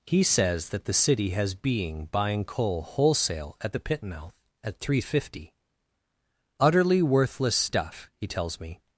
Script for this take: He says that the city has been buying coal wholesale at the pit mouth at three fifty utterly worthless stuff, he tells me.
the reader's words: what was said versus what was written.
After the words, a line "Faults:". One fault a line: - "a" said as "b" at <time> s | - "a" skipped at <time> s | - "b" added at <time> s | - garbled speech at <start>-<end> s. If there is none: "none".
He says that the city has being buying coal wholesale at the pit mouth at three fifty utterly worthless stuff, he tells me.
Faults:
- "been" said as "being" at 1.6 s